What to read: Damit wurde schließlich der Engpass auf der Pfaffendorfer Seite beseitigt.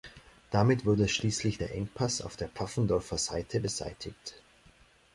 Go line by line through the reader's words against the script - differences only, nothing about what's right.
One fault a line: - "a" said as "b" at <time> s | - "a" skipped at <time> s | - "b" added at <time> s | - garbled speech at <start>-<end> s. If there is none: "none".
none